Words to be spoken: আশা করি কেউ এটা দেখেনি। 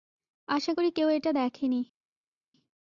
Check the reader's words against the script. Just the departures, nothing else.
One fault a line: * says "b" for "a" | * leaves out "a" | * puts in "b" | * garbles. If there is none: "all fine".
all fine